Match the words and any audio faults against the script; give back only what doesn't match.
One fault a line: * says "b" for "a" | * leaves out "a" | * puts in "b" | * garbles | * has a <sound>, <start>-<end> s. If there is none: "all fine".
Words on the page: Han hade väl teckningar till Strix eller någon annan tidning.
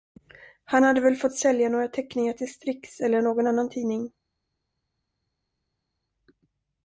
* puts in "fått sälja några"